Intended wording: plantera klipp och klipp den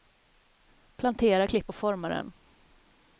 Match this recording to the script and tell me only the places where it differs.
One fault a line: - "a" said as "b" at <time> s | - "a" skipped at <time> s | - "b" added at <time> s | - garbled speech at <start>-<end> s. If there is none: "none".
- "klipp" said as "forma" at 1.7 s